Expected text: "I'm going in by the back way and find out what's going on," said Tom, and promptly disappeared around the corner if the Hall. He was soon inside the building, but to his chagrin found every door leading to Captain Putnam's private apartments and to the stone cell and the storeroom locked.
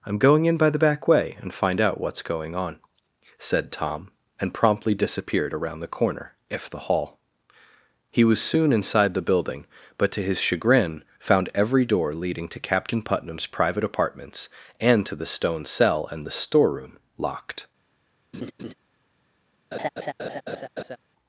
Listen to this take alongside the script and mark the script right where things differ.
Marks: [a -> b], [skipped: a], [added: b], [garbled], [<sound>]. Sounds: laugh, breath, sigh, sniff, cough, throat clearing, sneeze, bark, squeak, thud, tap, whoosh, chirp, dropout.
"I'm going in by the back way and find out what's going on," said Tom, and promptly disappeared around the corner if the Hall. He was soon inside the building, but to his chagrin found every door leading to Captain Putnam's private apartments and to the stone cell and the storeroom locked. [laugh] [laugh]